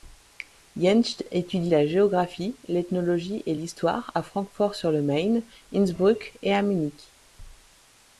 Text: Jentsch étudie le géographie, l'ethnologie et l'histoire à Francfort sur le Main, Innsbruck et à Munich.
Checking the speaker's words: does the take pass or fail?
fail